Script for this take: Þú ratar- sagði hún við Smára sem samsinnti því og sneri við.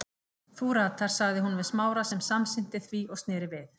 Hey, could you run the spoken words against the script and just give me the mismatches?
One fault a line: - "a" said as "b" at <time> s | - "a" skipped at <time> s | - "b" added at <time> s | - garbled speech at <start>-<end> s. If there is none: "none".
none